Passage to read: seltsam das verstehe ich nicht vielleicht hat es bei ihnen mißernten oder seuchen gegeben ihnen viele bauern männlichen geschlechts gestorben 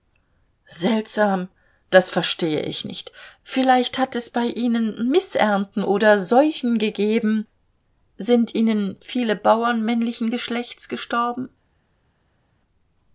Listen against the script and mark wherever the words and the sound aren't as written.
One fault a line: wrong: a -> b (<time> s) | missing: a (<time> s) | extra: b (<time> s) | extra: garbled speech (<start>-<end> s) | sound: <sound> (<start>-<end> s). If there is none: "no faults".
extra: sind (8.2 s)